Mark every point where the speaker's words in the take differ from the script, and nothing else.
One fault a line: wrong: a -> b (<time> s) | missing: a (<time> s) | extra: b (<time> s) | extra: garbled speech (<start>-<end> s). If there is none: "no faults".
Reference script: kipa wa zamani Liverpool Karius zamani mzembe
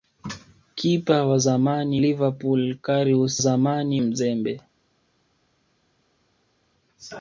no faults